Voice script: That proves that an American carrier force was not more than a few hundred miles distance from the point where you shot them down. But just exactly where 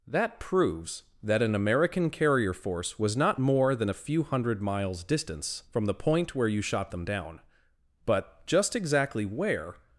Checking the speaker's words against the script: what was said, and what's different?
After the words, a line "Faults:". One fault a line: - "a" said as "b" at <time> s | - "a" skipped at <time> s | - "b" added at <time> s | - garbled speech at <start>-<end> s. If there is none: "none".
That proves that an American carrier force was not more than a few hundred miles distance from the point where you shot them down. But just exactly where
Faults:
none